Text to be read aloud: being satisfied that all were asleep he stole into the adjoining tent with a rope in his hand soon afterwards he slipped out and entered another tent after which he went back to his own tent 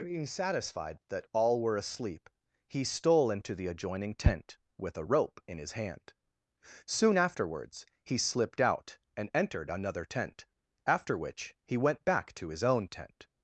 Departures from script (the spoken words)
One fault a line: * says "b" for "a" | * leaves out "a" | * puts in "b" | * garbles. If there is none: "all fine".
all fine